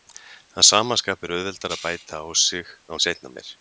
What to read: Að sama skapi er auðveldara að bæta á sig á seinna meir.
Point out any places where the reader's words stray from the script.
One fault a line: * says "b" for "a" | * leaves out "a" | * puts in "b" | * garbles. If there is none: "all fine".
all fine